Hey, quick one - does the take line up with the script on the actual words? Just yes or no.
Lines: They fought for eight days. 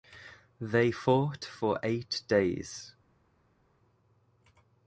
yes